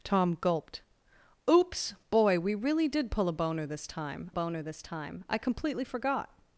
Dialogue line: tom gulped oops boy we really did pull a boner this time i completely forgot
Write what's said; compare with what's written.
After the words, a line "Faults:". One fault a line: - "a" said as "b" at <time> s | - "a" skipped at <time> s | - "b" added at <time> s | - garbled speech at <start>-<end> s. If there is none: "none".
tom gulped oops boy we really did pull a boner this time boner this time i completely forgot
Faults:
- "boner this time" added at 4.3 s